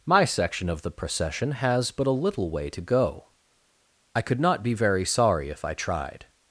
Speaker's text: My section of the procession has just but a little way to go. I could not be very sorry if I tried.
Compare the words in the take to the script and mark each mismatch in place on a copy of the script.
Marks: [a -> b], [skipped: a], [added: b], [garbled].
My section of the procession has [skipped: just] but a little way to go. I could not be very sorry if I tried.